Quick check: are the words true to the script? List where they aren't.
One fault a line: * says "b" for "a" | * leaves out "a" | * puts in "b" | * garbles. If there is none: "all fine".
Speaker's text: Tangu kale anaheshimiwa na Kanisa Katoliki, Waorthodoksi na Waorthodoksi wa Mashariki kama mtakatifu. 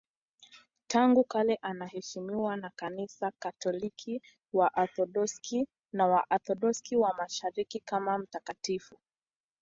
all fine